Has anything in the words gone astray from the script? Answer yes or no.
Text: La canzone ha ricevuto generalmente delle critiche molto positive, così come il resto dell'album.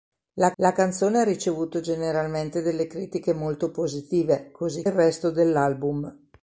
yes